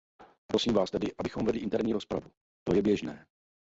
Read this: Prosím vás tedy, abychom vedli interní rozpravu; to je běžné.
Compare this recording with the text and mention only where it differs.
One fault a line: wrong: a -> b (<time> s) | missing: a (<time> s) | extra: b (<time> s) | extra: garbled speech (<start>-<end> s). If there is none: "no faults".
no faults